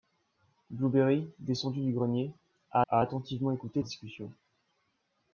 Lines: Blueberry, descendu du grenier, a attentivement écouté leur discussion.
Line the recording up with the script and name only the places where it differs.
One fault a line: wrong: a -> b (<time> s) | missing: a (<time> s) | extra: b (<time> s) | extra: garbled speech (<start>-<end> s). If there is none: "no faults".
extra: a (2.9 s)
missing: leur (3.8 s)